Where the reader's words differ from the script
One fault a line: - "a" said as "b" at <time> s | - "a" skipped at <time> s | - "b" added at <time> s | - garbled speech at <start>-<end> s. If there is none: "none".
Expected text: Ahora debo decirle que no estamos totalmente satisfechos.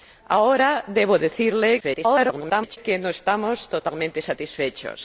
- garbled speech at 1.8-2.8 s